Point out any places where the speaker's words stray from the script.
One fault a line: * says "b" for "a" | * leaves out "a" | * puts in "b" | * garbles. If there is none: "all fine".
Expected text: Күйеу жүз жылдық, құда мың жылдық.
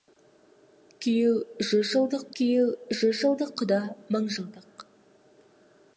* puts in "күйеу жүз жылдық"